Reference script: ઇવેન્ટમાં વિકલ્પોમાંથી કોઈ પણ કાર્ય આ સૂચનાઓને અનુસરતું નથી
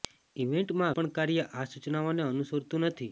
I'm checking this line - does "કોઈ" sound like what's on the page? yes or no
no